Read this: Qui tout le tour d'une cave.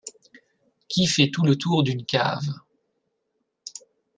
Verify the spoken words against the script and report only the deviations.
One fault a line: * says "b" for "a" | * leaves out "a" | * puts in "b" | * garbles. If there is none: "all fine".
* puts in "fait"